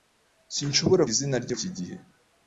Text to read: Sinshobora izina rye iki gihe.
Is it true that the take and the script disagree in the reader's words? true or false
false